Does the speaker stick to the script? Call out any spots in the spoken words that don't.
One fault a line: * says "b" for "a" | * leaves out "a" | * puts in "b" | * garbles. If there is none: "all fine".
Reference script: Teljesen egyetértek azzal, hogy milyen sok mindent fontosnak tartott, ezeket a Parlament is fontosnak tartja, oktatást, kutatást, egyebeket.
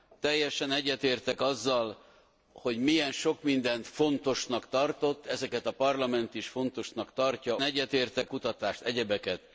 * says "egyetértek" for "oktatást"